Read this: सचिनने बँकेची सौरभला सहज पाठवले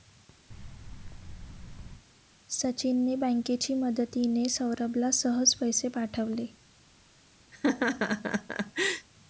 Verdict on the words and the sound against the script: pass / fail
fail